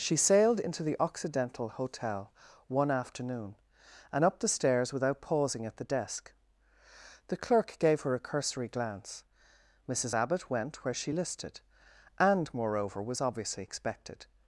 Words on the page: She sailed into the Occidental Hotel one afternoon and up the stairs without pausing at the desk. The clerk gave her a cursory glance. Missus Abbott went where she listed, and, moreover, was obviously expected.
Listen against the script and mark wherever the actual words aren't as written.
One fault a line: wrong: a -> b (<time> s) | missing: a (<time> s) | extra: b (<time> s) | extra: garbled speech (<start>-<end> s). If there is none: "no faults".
no faults